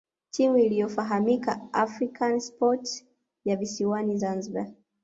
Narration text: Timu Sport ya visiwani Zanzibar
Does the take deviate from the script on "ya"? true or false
false